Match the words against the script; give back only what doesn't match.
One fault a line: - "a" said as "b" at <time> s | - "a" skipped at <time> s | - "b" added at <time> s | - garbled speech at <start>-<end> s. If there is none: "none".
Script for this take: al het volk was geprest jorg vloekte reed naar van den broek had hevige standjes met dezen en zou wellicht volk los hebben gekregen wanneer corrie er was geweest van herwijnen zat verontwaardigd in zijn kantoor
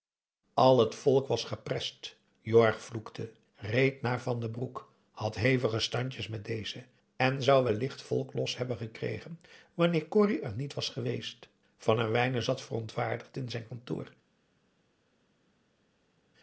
- "niet" added at 10.5 s